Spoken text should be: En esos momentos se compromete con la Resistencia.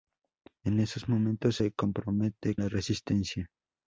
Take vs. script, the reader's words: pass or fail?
fail